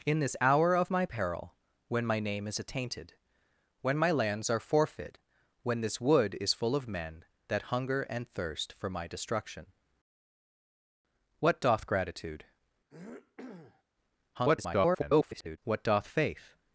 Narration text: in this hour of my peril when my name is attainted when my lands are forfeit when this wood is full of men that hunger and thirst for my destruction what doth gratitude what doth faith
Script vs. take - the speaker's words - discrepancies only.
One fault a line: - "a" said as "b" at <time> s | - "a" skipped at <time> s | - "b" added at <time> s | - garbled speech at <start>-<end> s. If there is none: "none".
- garbled speech at 14.3-15.6 s